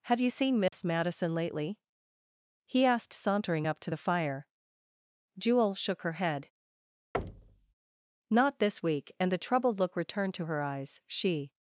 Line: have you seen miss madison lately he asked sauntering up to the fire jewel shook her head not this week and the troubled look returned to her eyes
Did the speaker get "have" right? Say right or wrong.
right